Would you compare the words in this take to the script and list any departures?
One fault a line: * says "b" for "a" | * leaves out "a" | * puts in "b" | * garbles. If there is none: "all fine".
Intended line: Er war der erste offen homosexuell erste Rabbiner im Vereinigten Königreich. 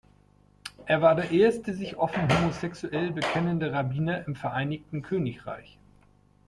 * puts in "sich"
* says "bekennende" for "erste"